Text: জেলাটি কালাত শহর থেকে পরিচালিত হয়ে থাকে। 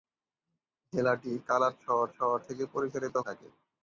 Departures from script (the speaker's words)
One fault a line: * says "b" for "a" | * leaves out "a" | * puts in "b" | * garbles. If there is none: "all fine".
* puts in "শহর"
* leaves out "হয়ে"